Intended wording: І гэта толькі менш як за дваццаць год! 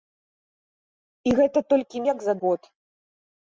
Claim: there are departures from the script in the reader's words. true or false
true